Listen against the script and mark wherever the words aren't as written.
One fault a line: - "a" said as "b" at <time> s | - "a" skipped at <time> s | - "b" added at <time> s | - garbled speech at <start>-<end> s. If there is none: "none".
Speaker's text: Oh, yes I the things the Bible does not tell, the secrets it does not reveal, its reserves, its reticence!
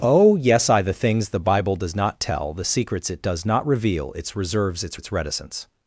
- "its" added at 4.9 s